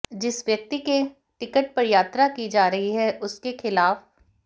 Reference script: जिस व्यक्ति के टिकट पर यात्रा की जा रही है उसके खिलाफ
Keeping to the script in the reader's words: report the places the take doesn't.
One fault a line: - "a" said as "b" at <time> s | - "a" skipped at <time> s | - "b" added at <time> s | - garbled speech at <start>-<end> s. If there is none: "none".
none